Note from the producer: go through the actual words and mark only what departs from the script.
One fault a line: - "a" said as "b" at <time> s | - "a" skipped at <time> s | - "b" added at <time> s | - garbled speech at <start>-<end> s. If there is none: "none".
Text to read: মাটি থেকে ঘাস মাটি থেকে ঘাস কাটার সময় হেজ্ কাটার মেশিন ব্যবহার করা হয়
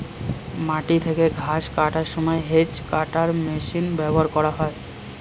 - "মাটি থেকে ঘাস" skipped at 1.6 s